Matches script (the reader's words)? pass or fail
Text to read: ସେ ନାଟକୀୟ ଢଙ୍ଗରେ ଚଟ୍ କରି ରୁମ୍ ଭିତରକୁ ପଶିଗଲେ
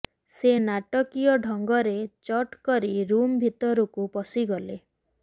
pass